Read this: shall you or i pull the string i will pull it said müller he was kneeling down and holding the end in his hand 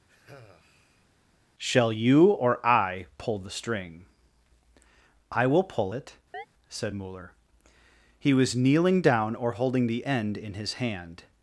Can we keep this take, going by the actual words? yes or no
no